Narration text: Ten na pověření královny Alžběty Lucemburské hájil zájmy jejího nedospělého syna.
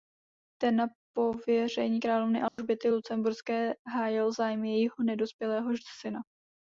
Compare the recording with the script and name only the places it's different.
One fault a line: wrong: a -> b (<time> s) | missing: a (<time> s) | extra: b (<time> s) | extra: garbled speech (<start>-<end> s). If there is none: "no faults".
no faults